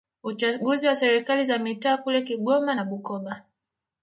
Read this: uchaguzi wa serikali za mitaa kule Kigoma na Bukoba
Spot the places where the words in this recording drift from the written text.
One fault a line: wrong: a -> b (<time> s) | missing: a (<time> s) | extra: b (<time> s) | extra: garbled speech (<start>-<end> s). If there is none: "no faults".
no faults